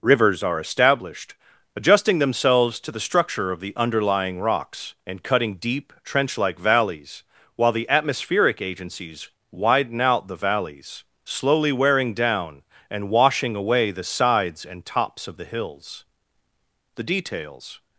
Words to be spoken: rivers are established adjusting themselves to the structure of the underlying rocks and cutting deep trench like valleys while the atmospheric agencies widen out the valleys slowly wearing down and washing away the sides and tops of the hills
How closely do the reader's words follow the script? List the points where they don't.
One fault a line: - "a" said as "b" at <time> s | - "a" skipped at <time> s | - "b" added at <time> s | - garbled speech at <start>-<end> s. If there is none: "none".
- "the details" added at 17.0 s